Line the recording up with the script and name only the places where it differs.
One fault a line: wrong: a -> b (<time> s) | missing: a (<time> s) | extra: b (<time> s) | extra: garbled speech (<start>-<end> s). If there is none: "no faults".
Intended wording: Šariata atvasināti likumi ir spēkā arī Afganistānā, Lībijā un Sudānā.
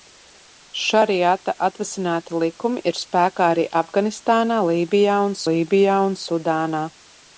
extra: Lībijā un (5.5 s)